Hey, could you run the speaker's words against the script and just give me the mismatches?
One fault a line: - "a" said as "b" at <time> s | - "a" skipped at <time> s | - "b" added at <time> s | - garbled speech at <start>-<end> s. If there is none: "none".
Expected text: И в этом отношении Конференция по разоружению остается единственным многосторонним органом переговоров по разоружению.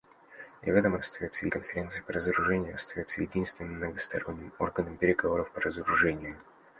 - "отношении" said as "остается" at 1.0 s